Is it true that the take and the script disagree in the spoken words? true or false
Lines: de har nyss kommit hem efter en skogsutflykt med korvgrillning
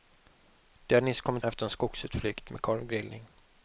true